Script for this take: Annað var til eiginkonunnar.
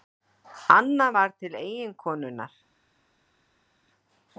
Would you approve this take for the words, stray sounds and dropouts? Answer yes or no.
yes